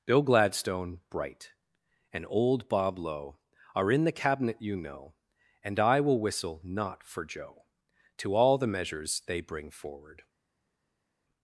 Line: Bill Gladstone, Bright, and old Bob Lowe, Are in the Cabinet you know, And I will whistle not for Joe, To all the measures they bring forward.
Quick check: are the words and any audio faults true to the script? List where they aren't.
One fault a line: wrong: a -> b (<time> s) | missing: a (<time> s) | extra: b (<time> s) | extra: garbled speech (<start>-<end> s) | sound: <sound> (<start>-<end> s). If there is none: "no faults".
no faults